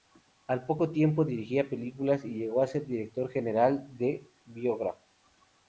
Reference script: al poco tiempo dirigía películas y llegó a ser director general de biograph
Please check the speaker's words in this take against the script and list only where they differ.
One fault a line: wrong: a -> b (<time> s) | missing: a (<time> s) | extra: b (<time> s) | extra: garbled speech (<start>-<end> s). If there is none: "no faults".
no faults